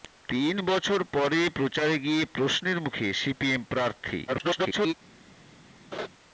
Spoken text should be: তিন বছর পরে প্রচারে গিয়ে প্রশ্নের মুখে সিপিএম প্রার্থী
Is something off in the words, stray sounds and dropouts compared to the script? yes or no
yes